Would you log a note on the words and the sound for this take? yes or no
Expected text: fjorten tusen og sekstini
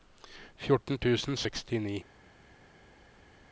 no